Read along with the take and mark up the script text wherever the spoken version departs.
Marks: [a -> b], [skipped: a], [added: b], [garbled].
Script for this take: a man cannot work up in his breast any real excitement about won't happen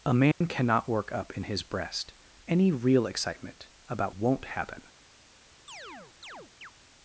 a man cannot work up in his breast any real excitement about won't happen